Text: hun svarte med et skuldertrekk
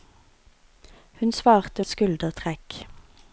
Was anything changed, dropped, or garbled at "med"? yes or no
yes